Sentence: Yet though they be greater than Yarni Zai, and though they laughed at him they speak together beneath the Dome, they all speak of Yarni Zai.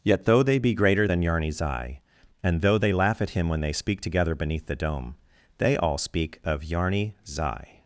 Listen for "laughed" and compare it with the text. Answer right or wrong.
wrong